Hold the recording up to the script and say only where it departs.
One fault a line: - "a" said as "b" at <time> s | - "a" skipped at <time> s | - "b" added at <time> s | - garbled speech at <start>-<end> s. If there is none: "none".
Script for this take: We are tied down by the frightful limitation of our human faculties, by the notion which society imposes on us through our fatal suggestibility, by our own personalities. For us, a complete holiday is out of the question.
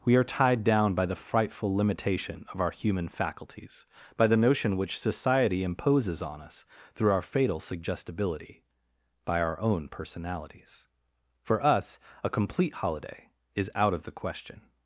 none